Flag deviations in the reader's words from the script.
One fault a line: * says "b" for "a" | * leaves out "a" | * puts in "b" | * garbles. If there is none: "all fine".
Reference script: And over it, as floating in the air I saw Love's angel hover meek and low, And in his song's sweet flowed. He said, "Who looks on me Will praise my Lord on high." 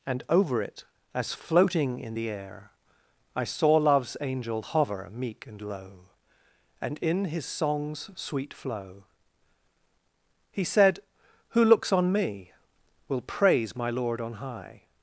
* says "flow" for "flowed"